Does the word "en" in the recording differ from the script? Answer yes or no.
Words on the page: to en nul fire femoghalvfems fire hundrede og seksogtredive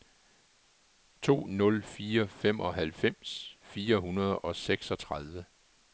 yes